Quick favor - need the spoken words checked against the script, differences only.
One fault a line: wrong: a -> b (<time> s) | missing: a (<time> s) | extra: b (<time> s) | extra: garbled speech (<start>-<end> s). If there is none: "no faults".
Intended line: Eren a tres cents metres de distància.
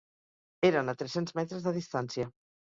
no faults